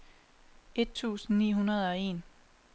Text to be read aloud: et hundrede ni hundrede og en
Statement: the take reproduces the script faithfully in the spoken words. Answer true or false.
false